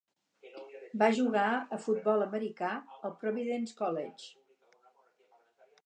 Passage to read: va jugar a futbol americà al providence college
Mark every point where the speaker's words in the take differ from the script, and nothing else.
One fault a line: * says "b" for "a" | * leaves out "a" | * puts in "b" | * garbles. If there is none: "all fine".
all fine